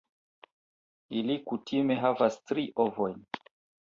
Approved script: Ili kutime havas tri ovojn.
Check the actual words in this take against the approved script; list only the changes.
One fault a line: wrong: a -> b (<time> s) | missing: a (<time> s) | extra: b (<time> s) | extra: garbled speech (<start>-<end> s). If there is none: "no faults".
no faults